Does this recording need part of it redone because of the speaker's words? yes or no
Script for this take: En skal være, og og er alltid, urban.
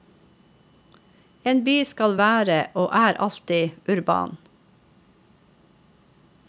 yes